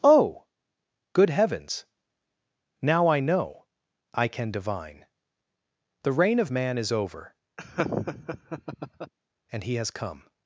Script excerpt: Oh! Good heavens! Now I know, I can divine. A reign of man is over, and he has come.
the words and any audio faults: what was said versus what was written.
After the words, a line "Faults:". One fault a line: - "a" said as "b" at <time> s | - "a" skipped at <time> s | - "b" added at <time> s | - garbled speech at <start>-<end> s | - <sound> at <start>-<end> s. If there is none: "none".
Oh! Good heavens! Now I know, I can divine. The reign of man is over, and he has come.
Faults:
- "A" said as "The" at 6.0 s
- laugh at 7.6-9.1 s